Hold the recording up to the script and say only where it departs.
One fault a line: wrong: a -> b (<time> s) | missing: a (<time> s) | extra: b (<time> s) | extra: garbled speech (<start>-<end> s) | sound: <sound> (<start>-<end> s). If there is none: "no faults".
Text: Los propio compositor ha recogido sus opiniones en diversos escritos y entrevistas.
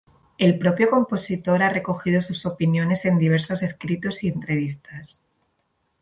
wrong: Los -> El (0.4 s)